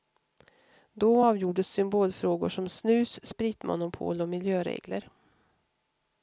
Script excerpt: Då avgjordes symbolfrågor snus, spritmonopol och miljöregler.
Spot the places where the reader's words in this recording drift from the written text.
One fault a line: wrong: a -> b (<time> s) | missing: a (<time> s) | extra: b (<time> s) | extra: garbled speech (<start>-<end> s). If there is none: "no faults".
extra: som (2.5 s)